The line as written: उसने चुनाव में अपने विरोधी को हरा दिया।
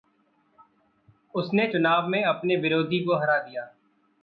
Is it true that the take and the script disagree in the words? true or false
false